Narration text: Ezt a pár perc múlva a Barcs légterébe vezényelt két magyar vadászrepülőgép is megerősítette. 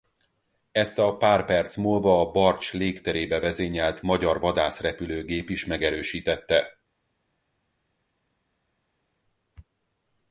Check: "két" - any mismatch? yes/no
yes